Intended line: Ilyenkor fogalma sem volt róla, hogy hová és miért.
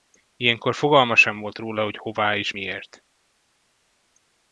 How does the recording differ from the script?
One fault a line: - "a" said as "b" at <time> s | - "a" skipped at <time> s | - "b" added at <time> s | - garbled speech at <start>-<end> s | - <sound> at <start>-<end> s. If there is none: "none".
none